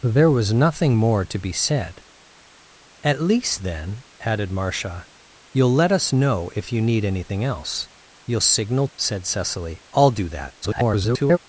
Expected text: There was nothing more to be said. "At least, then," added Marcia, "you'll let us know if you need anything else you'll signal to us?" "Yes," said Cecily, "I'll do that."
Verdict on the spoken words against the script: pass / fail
fail